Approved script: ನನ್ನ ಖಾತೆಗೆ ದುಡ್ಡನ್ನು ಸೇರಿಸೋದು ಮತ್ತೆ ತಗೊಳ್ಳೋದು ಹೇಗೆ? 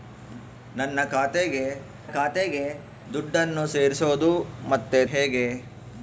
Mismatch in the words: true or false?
true